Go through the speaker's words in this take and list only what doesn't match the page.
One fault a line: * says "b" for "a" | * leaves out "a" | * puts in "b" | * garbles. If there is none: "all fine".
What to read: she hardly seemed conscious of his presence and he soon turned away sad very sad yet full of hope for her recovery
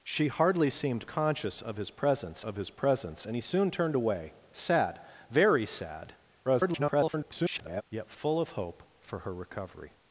* puts in "of his presence"
* garbles